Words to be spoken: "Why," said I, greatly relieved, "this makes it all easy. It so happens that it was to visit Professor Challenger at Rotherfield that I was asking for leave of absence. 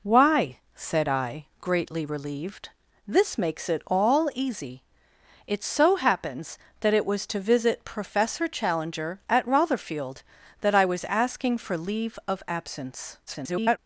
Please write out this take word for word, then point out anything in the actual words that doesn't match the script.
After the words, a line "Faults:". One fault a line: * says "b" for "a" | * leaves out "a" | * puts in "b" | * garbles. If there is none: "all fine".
"Why," said I, greatly relieved, "this makes it all easy. It so happens that it was to visit Professor Challenger at Rotherfield that I was asking for leave of absence. [garbled]
Faults:
* garbles